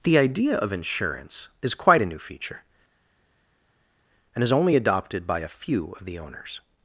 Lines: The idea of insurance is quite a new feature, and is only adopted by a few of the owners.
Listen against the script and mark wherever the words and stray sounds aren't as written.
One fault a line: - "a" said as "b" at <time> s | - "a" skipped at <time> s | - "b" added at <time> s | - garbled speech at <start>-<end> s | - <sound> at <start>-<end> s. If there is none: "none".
none